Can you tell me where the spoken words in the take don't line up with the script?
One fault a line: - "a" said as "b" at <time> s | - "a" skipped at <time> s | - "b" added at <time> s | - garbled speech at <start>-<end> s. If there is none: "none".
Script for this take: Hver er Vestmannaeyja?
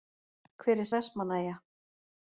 none